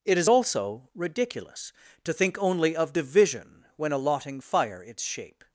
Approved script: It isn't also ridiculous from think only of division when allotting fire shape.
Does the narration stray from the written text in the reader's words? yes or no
yes